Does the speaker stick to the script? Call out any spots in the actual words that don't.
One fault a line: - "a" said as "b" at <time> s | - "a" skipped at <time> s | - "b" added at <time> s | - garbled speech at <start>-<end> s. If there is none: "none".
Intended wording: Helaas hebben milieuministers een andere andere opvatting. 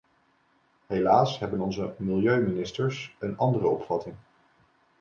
- "onze" added at 1.6 s
- "andere" skipped at 3.7 s